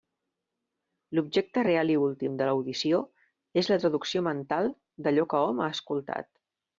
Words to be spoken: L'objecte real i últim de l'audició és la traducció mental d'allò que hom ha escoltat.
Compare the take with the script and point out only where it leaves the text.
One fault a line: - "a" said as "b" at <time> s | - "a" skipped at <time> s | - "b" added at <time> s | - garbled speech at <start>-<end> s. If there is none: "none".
none